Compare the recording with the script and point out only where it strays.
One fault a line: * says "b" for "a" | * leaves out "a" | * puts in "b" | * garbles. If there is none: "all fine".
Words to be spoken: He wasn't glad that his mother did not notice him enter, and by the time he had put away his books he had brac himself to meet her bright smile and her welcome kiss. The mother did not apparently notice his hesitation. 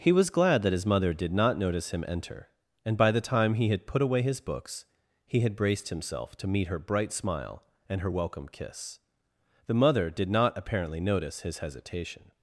* says "was" for "wasn't"
* says "braced" for "brac"